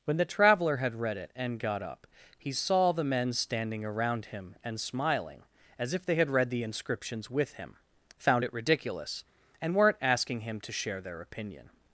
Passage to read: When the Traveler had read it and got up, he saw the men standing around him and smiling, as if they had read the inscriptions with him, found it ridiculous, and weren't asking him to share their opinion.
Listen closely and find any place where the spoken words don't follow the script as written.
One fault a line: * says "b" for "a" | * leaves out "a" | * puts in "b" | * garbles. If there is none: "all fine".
all fine